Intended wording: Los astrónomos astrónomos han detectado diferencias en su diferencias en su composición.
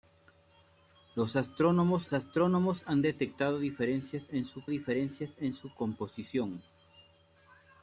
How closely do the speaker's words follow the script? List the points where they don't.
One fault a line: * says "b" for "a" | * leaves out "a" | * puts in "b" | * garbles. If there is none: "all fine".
all fine